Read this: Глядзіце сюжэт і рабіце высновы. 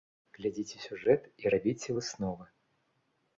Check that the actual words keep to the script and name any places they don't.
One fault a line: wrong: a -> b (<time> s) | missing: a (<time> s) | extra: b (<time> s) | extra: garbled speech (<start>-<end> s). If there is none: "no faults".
no faults